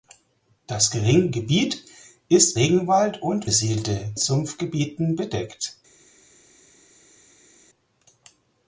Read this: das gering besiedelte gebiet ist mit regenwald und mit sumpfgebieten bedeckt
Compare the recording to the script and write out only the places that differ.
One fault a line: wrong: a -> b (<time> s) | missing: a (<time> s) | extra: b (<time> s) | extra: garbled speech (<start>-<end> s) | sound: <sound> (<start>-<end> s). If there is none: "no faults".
missing: besiedelte (1.3 s)
missing: mit (2.6 s)
wrong: mit -> besiedelte (3.4 s)